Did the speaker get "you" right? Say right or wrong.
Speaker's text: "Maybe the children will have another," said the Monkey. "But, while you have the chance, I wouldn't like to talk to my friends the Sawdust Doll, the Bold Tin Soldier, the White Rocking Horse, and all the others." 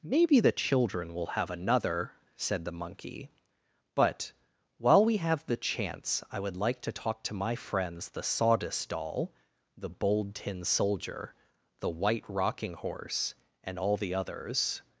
wrong